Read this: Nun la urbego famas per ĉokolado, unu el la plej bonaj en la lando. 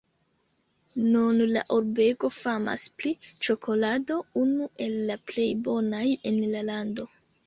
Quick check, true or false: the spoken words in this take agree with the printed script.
false